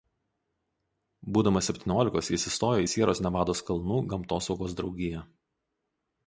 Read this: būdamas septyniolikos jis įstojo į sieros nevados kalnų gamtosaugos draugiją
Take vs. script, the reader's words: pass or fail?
pass